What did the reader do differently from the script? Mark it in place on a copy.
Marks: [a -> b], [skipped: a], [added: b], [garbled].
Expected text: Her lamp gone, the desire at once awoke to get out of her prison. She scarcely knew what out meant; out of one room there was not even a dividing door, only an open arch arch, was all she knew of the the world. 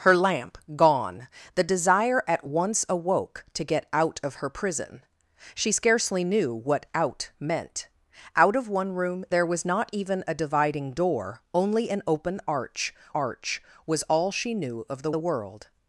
Her lamp gone, the desire at once awoke to get out of her prison. She scarcely knew what out meant; out of one room there was not even a dividing door, only an open arch arch, was all she knew of the the world.